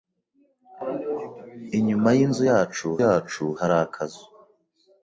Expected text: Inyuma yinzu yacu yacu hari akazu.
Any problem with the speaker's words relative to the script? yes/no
no